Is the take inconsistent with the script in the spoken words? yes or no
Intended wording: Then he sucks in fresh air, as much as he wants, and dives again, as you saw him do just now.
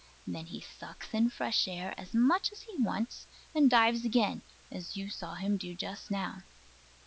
no